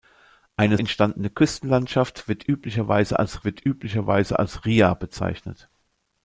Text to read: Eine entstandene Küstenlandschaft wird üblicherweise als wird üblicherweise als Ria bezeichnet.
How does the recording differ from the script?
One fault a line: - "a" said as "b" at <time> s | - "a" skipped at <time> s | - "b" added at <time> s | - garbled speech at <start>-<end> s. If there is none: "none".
none